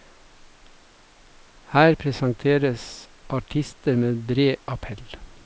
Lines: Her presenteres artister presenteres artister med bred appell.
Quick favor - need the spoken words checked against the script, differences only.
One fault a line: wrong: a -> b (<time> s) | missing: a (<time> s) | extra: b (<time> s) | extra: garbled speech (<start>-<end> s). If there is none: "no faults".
missing: presenteres artister (4.0 s)